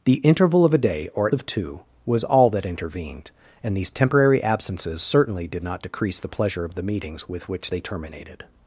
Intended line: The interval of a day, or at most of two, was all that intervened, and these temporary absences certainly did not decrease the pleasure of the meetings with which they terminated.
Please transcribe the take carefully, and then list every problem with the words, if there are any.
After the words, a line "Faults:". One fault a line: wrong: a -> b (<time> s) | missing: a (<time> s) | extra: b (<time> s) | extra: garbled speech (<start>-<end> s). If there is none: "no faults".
The interval of a day, or at of two, was all that intervened, and these temporary absences certainly did not decrease the pleasure of the meetings with which they terminated.
Faults:
missing: most (1.4 s)